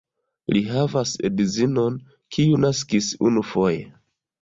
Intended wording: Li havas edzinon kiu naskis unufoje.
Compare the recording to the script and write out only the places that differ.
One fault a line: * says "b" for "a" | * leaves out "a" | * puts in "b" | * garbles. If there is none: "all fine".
all fine